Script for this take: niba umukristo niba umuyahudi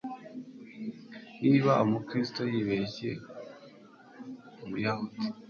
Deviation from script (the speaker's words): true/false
true